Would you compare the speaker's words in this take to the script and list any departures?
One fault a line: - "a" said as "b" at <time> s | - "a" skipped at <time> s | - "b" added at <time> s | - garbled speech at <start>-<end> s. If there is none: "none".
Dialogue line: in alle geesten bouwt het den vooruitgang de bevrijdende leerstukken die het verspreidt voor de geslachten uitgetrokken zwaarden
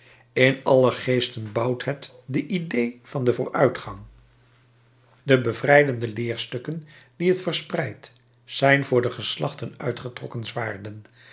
- "de idée van" added at 2.2 s
- "zijn" added at 8.4 s